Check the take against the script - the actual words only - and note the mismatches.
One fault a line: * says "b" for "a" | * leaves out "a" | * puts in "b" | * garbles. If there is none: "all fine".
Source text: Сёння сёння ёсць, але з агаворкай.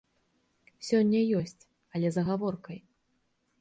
* leaves out "сёння"